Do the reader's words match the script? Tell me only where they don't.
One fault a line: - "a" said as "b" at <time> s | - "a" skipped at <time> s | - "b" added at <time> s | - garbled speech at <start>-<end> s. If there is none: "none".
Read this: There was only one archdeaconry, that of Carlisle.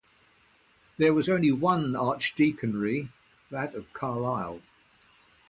none